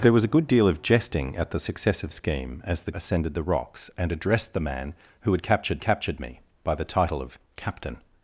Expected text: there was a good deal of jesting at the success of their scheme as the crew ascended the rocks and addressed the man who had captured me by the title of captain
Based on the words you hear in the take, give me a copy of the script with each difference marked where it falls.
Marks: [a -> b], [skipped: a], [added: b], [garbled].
there was a good deal of jesting at the success of [skipped: their] scheme as the [skipped: crew] ascended the rocks and addressed the man who had captured [added: captured] me by the title of captain